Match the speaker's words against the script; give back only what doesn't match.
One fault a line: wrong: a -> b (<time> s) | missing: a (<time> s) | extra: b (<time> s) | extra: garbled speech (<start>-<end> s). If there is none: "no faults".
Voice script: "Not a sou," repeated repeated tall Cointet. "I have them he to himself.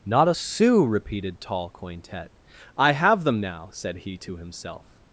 missing: repeated (1.4 s)
extra: now said (3.4 s)